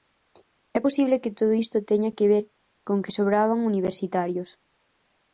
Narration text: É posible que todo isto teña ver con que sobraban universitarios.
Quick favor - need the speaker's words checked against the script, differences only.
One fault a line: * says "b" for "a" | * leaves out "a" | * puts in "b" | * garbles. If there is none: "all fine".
* puts in "que"